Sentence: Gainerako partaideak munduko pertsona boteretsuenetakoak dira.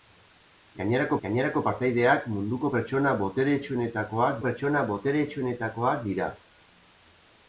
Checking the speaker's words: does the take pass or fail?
fail